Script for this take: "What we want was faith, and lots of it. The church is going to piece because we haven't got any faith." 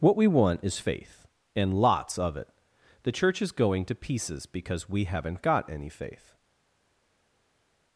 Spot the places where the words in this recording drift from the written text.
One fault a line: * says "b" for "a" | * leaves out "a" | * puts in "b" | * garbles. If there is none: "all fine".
* says "is" for "was"
* says "pieces" for "piece"